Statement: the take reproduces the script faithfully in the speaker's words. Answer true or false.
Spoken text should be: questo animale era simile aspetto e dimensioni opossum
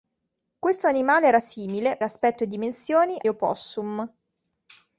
true